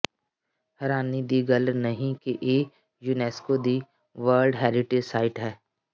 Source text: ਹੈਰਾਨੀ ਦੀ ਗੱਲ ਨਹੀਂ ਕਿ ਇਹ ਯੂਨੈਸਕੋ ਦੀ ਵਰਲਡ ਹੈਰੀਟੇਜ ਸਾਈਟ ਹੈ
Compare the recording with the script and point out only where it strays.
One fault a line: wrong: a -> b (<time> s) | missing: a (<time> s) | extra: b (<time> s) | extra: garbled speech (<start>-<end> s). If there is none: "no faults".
no faults